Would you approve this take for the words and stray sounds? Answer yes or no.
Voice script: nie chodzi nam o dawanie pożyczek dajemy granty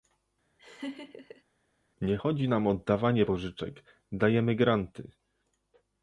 no